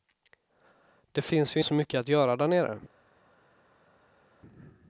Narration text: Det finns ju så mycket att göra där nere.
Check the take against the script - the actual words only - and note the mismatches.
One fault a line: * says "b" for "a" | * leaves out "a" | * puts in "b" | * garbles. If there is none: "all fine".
all fine